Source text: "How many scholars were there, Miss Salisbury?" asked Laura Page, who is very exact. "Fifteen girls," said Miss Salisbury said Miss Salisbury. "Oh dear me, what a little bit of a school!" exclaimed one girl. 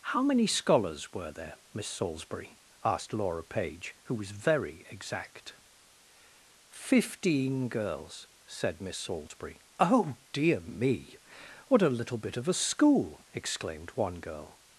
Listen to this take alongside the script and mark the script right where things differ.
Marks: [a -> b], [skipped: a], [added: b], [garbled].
"How many scholars were there, Miss Salisbury?" asked Laura Page, who [is -> was] very exact. "Fifteen girls," said Miss Salisbury [skipped: said Miss Salisbury.] "Oh dear me, what a little bit of a school!" exclaimed one girl.